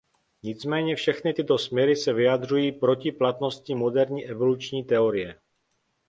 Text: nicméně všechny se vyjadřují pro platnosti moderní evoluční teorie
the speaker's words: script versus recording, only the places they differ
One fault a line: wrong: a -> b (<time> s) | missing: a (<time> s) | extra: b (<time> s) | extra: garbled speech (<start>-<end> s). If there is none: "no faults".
extra: tyto směry (1.3 s)
wrong: pro -> proti (2.7 s)